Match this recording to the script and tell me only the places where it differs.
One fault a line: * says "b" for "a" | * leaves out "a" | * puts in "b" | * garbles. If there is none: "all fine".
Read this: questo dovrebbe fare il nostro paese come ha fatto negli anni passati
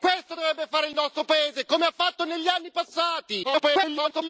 * garbles